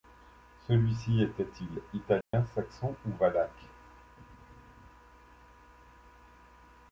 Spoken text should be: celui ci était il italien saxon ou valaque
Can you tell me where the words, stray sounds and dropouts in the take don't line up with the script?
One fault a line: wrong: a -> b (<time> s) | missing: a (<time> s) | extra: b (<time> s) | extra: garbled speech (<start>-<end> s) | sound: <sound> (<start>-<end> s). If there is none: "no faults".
sound: dropout (2.2-2.3 s)